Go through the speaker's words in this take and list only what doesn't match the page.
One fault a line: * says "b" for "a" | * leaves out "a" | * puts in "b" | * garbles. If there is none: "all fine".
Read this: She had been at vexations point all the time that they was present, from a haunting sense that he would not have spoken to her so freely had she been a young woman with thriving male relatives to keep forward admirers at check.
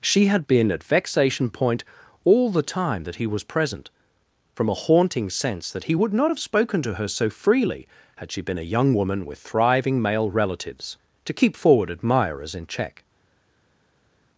* says "vexation" for "vexations"
* says "he" for "they"
* says "in" for "at"